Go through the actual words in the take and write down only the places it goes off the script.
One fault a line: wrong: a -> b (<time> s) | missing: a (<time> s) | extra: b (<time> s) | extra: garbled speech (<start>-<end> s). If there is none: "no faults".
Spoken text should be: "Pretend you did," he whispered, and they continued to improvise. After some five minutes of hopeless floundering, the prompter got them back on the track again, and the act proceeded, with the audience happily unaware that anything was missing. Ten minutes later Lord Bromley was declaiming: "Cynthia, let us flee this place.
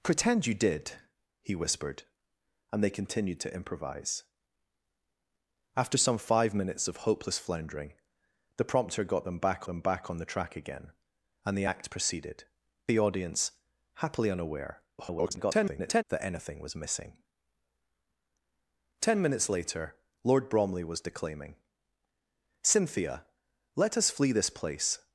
extra: them back (9.6 s)
missing: with (12.4 s)
extra: garbled speech (15.0-16.0 s)